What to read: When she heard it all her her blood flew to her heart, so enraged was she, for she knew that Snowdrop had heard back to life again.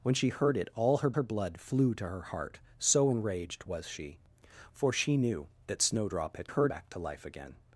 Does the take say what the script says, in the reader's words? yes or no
yes